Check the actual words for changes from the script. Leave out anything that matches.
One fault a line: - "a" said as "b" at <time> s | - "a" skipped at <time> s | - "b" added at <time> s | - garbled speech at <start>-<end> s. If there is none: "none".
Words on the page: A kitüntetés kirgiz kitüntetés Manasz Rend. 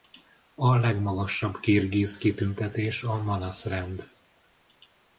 - "kitüntetés" said as "legmagasabb" at 0.8 s
- "a" added at 3.0 s